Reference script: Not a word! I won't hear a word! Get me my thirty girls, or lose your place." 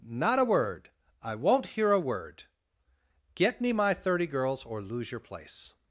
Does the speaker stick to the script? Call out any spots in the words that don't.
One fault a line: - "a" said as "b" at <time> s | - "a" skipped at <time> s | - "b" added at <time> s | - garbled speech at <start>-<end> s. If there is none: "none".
none